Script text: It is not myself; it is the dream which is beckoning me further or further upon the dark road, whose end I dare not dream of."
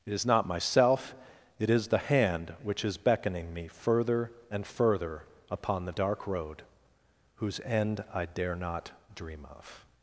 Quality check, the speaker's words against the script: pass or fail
fail